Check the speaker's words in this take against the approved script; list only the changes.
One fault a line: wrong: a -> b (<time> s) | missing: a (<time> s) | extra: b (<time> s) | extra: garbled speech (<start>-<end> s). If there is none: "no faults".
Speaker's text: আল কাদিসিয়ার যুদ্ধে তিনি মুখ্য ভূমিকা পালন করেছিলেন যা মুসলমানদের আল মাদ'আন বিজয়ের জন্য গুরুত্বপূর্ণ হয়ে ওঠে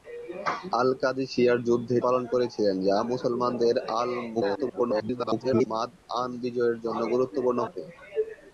missing: তিনি মুখ্য ভূমিকা (2.0 s)
extra: garbled speech (4.3-5.7 s)
missing: হয়ে (7.6 s)